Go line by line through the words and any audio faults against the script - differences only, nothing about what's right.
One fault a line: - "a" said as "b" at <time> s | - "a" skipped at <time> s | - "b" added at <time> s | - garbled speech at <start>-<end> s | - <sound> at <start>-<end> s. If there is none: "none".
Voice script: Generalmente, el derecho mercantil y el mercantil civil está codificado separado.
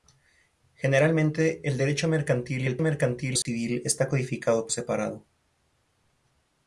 - dropout at 3.4-3.5 s